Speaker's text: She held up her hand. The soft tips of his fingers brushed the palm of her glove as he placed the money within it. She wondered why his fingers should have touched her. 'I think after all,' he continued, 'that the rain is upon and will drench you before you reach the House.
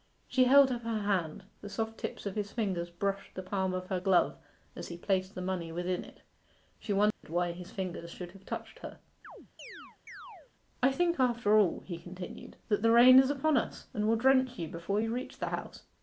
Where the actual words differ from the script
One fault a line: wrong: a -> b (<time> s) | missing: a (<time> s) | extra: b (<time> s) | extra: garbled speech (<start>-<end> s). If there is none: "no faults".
extra: us (13.6 s)